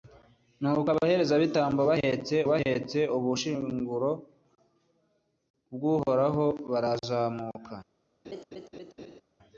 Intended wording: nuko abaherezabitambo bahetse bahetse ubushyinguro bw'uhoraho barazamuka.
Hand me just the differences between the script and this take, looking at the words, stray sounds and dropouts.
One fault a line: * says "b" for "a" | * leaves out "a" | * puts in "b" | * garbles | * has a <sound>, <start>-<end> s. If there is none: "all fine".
* has a laugh, 8.2-9.2 s